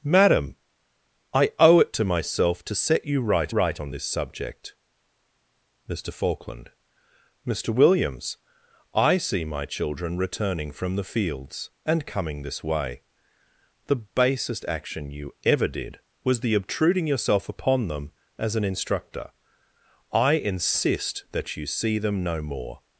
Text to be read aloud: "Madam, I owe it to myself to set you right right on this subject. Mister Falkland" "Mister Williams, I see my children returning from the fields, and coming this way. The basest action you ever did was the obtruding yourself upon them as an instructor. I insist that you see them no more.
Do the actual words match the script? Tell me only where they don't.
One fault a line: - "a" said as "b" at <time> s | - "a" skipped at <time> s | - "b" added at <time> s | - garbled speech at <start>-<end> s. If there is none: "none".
none